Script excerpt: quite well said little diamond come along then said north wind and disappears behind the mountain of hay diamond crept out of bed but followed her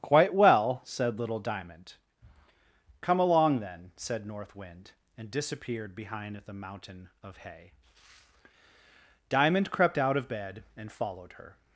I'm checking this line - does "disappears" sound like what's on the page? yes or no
no